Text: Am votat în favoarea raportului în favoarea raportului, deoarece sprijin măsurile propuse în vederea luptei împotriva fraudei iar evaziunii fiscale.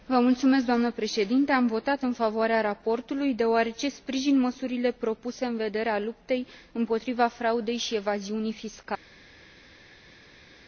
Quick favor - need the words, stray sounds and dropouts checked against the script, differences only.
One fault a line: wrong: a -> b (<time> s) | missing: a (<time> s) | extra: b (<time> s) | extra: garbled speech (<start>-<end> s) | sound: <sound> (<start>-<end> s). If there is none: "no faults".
missing: în favoarea raportului (3.3 s)
wrong: iar -> și (7.8 s)